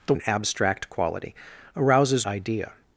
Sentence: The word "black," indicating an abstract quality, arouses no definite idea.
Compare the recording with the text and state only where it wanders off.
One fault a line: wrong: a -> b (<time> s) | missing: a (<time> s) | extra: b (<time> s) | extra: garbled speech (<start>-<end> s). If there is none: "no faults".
missing: word black indicating (0.1 s)
missing: no definite (2.3 s)